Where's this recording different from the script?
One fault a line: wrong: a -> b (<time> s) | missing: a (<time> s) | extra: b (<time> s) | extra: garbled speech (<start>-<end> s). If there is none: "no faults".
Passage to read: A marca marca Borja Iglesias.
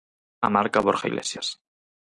missing: marca (0.8 s)